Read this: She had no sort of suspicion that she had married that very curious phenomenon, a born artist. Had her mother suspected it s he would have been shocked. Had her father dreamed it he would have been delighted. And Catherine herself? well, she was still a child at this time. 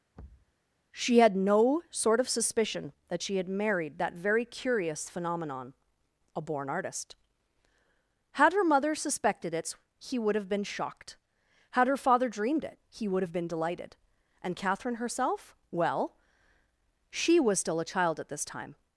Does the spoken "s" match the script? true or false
false